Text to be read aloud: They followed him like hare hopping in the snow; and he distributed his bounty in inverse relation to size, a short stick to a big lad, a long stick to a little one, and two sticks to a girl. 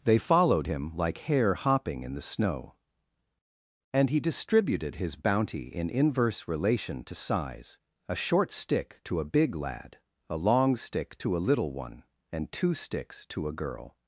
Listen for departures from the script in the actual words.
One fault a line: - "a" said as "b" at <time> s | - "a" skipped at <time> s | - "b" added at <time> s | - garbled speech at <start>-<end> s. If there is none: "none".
none